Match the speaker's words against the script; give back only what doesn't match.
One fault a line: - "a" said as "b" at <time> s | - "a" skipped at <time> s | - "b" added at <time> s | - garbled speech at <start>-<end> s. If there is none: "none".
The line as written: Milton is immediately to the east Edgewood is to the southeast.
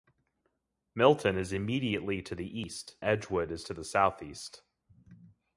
none